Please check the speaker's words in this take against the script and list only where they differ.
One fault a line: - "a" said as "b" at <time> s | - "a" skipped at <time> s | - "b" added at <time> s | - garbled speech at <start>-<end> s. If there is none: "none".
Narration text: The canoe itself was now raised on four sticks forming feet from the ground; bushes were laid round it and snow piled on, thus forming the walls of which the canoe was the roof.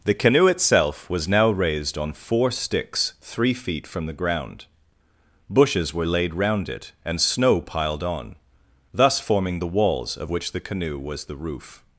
- "forming" said as "three" at 3.2 s